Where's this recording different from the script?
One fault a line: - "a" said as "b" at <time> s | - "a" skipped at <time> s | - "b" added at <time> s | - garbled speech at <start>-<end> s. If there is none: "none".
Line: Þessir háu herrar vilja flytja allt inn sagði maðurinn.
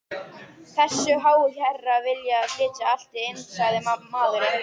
none